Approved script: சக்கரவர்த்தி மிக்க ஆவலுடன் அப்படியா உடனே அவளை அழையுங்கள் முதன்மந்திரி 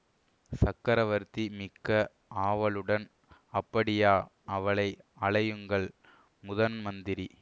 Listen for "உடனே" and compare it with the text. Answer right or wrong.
wrong